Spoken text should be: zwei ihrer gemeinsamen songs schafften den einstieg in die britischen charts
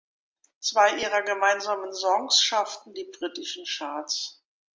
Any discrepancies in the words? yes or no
yes